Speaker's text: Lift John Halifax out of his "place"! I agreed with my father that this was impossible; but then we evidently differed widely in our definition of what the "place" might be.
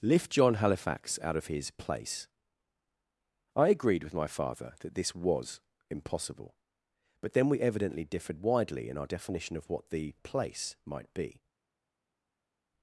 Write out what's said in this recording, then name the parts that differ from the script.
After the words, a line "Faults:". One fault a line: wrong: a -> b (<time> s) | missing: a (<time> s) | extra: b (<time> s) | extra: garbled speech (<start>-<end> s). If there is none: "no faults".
Lift John Halifax out of his "place"! I agreed with my father that this was impossible; but then we evidently differed widely in our definition of what the "place" might be.
Faults:
no faults